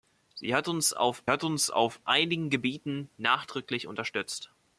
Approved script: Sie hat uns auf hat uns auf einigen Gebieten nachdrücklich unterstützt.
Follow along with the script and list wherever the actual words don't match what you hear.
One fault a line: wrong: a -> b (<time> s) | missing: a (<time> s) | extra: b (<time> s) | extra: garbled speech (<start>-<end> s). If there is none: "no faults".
no faults